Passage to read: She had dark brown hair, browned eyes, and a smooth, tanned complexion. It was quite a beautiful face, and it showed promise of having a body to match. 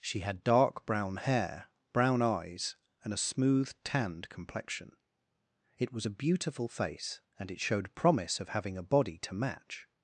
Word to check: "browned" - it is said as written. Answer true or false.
false